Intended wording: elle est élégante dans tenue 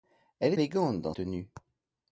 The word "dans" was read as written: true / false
true